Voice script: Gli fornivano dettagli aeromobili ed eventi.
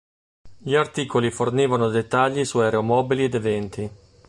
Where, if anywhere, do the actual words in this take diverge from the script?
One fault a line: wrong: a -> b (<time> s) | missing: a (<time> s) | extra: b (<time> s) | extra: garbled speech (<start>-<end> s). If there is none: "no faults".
extra: articoli (0.7 s)
extra: su (2.4 s)